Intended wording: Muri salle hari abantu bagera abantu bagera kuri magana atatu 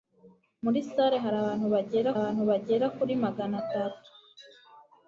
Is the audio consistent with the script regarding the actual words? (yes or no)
yes